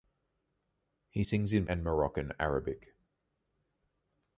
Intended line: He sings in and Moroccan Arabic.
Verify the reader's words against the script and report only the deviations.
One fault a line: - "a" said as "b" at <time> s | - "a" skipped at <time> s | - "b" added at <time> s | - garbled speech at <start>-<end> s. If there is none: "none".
none